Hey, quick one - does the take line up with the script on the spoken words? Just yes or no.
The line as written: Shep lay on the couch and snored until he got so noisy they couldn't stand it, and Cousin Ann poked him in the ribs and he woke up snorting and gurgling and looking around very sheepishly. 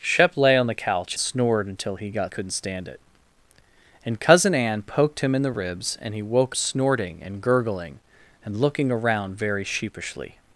no